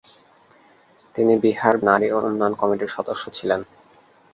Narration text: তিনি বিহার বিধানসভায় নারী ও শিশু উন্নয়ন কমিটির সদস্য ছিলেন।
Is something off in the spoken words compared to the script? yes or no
yes